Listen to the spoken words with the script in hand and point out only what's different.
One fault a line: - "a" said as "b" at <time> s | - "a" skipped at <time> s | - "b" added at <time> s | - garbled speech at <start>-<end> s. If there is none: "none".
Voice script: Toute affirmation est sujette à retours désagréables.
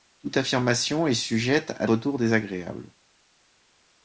none